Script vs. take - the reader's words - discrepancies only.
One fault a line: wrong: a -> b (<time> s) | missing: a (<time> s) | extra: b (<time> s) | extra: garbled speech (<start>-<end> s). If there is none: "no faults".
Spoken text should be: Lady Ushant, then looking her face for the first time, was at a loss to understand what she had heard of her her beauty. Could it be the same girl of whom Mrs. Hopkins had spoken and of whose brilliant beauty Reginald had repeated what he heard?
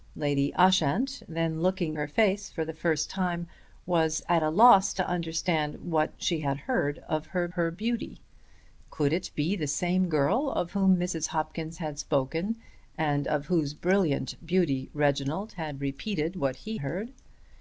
no faults